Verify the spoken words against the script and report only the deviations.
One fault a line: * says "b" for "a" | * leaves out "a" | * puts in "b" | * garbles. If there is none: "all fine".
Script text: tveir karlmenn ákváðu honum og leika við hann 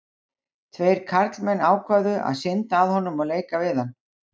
* puts in "að synda að"